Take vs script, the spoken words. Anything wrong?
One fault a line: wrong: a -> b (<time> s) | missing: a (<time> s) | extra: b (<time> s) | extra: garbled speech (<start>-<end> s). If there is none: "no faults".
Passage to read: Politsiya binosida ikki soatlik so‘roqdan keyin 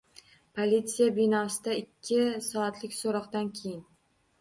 no faults